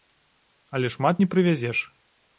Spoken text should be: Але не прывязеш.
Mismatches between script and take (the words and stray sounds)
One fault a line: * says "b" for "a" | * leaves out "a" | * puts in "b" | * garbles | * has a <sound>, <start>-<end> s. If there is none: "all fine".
* puts in "шмат"